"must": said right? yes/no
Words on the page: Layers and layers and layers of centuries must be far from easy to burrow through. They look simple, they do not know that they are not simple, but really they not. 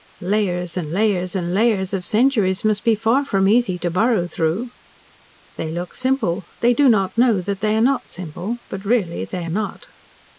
yes